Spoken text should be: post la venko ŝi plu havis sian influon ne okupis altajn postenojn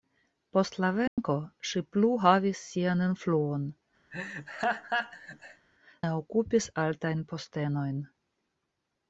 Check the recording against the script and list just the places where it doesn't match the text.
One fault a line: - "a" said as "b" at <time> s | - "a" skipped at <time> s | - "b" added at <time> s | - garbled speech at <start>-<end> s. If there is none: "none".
none